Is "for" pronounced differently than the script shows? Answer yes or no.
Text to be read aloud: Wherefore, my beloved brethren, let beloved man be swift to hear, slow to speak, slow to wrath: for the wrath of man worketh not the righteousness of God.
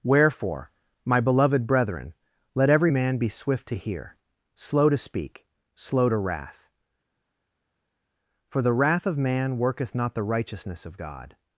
no